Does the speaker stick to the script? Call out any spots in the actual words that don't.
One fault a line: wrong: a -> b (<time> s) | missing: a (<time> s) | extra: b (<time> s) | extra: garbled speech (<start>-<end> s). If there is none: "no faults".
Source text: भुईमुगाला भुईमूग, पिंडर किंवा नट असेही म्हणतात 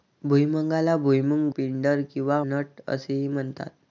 no faults